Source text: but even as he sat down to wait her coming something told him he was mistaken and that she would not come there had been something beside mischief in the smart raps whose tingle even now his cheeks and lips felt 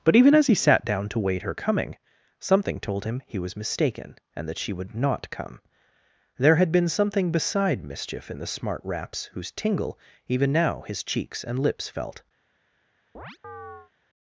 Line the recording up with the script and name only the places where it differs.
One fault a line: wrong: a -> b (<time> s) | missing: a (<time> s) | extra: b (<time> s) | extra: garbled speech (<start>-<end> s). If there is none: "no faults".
no faults